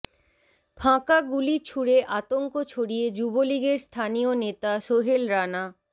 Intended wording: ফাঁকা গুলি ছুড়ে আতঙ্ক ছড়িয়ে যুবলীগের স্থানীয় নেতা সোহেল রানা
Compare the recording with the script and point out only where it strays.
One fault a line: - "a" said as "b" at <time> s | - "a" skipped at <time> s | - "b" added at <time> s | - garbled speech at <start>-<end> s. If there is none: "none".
none